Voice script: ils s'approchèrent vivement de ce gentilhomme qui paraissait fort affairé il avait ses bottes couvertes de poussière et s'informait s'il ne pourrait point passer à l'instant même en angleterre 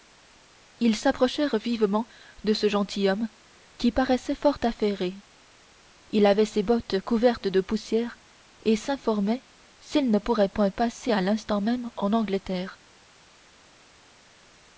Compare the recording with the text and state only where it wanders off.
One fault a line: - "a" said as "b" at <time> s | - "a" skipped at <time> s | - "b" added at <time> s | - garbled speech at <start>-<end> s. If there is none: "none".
none